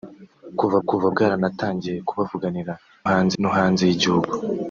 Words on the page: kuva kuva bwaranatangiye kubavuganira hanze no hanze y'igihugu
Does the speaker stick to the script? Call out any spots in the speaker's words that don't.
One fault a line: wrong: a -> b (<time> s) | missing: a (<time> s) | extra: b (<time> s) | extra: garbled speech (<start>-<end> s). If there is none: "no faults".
no faults